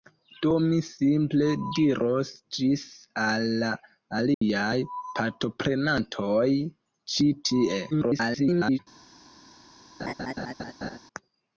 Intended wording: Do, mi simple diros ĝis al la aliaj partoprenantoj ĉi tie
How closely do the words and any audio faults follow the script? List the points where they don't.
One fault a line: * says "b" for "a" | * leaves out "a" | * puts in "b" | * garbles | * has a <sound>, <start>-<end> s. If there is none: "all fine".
* has a dropout, 4.3-4.4 s
* garbles
* has a laugh, 10.0-11.0 s